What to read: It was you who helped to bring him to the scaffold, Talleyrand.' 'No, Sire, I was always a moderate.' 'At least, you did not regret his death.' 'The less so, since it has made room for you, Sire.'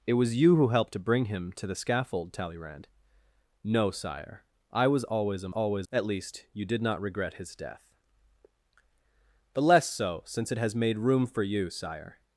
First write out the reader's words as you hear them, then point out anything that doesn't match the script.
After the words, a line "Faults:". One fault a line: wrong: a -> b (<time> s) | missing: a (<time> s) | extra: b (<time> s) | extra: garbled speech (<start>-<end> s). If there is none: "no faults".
It was you who helped to bring him to the scaffold, Talleyrand.' 'No, Sire, I was always a always.' 'At least, you did not regret his death.' 'The less so, since it has made room for you, Sire.'
Faults:
wrong: moderate -> always (5.5 s)